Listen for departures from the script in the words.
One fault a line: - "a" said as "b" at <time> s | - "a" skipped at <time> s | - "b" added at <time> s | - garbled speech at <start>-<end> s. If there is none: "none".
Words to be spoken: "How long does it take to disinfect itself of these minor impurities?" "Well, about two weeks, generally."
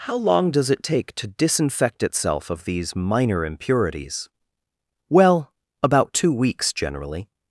none